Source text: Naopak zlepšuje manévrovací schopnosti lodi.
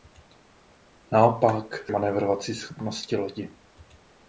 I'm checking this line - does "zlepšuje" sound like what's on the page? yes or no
no